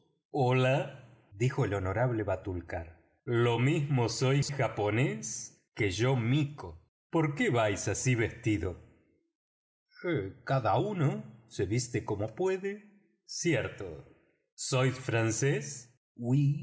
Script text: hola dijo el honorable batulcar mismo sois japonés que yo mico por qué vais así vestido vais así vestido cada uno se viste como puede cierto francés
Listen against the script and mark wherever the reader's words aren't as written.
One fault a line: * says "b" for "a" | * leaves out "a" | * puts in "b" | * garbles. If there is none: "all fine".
* puts in "lo"
* leaves out "vais así vestido"
* puts in "sois"